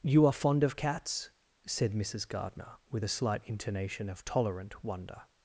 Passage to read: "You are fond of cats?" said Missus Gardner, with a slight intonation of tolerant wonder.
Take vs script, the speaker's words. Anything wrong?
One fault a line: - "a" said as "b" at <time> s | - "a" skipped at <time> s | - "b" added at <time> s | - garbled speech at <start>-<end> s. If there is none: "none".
none